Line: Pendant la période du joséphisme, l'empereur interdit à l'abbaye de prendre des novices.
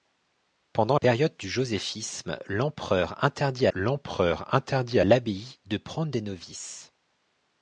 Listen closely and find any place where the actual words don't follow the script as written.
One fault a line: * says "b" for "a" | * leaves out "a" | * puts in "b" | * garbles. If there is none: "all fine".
* leaves out "la"
* puts in "l'empereur interdit"